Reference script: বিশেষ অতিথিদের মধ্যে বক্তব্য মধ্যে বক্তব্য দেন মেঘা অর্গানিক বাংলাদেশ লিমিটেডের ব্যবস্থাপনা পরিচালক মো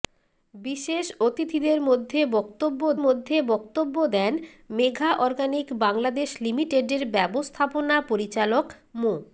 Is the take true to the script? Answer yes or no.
yes